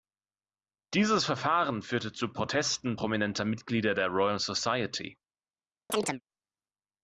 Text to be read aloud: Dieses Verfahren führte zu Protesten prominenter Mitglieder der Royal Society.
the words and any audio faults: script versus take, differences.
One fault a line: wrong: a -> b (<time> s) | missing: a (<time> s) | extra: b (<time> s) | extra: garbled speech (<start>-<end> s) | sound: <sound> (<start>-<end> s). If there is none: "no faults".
sound: chirp (5.9-6.2 s)